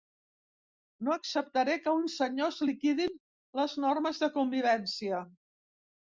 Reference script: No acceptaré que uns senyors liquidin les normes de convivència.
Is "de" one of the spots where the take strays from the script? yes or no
no